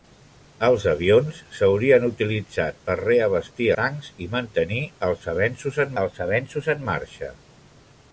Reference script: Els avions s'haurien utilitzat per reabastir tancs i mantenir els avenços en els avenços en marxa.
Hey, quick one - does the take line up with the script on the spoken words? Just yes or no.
yes